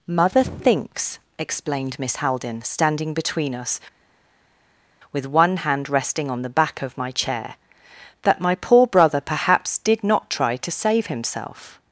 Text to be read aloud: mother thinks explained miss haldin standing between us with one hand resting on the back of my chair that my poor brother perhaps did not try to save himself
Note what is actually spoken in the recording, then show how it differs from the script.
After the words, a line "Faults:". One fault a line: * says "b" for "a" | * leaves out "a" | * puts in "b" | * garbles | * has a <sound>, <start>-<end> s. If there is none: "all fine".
mother thinks explained miss haldin standing between us with one hand resting on the back of my chair that my poor brother perhaps did not try to save himself
Faults:
all fine